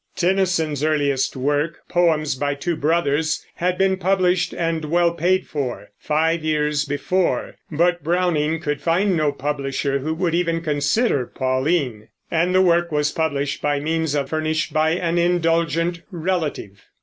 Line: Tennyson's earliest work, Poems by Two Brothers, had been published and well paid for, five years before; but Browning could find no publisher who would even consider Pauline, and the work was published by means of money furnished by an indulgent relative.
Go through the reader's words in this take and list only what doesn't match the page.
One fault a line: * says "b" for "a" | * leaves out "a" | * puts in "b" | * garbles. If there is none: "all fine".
* leaves out "money"